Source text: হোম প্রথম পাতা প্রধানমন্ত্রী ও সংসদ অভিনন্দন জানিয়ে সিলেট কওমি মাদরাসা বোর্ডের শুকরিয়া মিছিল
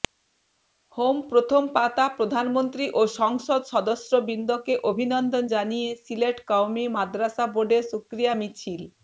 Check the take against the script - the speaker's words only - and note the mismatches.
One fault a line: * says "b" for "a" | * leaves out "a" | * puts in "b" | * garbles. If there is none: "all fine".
* puts in "সদস্যবৃন্দকে"